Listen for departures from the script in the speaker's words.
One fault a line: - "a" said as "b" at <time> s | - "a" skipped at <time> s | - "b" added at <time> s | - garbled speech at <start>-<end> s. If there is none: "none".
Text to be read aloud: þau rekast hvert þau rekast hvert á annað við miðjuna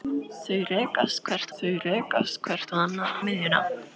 none